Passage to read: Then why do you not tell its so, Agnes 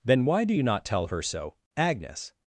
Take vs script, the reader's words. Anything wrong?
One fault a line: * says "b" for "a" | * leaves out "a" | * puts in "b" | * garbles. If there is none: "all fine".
* says "her" for "its"